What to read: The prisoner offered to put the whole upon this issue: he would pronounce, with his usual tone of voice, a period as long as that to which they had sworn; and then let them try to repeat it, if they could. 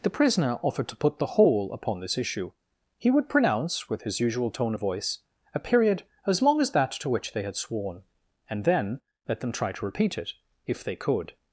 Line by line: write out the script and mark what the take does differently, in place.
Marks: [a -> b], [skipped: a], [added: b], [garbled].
The prisoner offered to put the whole upon this issue: he would pronounce, with his usual tone of voice, a period as long as that to which they had sworn; and then let them try to repeat it, if they could.